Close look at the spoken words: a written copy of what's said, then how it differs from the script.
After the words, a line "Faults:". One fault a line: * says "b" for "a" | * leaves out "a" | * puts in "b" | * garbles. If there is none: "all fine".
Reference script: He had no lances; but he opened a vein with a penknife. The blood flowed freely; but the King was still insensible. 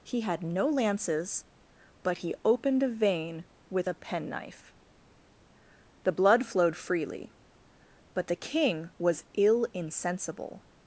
He had no lances; but he opened a vein with a penknife. The blood flowed freely; but the King was ill insensible.
Faults:
* says "ill" for "still"